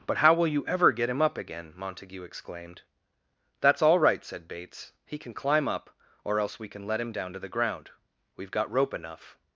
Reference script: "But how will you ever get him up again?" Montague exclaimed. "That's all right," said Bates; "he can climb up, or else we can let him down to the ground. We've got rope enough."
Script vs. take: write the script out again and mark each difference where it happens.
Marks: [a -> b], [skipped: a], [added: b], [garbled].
"But how will you ever get him up again?" Montague exclaimed. "That's all right," said Bates; "he can climb up, or else we can let him down to the ground. We've got rope enough."